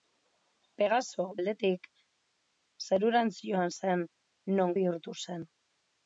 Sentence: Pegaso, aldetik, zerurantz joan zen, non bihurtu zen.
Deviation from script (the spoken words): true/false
false